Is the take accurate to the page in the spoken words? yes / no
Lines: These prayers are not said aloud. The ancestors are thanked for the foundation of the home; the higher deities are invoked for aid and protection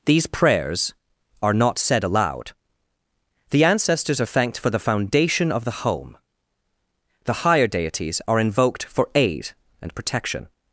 yes